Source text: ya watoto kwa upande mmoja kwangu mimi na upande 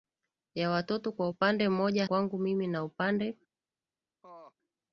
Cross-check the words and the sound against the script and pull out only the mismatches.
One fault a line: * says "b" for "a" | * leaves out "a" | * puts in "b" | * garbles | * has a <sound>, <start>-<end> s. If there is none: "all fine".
* has a laugh, 4.2-4.5 s